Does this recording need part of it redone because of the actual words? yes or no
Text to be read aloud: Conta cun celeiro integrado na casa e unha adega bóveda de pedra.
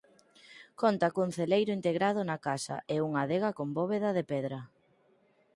yes